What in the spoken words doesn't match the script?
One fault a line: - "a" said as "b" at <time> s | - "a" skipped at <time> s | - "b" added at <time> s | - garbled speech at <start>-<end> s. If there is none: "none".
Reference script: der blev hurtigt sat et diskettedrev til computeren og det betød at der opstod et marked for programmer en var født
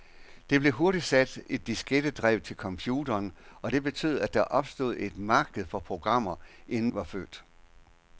none